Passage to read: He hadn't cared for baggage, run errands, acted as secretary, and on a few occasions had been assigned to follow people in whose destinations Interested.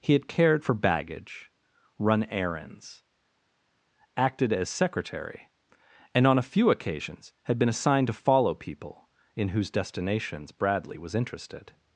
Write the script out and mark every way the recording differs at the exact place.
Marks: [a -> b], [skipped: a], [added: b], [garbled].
He [hadn't -> had] cared for baggage, run errands, acted as secretary, and on a few occasions had been assigned to follow people in whose destinations [added: Bradley was] Interested.